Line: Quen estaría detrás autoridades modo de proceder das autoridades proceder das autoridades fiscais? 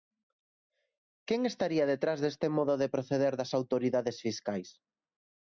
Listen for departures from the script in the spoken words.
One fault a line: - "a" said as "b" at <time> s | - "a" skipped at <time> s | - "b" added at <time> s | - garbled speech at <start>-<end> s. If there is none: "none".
- "autoridades" said as "deste" at 2.2 s
- "proceder das autoridades" skipped at 4.2 s